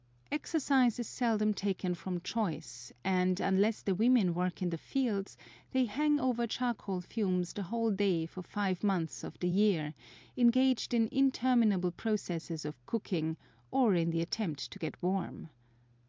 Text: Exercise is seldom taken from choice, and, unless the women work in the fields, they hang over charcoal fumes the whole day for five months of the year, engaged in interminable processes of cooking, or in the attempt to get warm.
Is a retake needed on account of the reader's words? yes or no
no